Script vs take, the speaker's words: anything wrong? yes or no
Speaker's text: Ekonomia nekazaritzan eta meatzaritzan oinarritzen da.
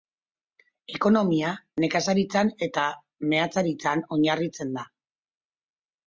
no